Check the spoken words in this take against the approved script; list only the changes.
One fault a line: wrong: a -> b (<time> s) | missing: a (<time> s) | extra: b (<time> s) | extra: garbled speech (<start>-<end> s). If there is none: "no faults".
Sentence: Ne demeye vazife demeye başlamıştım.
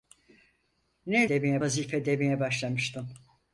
no faults